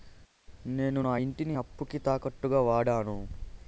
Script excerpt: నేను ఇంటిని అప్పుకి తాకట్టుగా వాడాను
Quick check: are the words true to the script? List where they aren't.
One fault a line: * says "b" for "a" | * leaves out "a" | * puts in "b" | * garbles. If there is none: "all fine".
* puts in "నా"